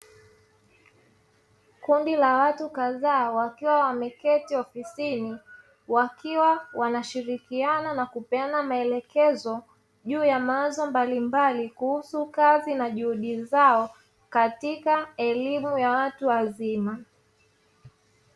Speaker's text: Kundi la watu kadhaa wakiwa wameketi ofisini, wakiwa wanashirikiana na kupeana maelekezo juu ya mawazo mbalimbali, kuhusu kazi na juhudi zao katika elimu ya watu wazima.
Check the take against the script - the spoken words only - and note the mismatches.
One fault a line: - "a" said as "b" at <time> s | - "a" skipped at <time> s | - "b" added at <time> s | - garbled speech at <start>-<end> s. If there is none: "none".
none